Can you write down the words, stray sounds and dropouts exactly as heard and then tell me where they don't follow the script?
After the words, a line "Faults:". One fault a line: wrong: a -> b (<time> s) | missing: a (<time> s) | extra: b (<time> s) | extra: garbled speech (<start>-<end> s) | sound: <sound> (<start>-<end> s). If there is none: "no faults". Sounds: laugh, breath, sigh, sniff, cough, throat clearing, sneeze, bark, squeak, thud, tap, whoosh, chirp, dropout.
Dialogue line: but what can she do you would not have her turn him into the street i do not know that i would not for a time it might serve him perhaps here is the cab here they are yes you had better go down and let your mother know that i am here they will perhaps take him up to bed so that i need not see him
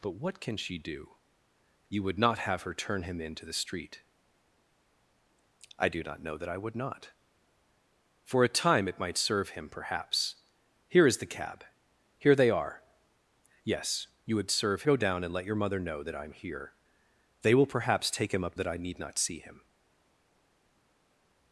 but what can she do you would not have her turn him into the street i do not know that i would not for a time it might serve him perhaps here is the cab here they are yes you had serve go down and let your mother know that i am here they will perhaps take him up that i need not see him
Faults:
wrong: better -> serve (14.5 s)
missing: to bed so (18.6 s)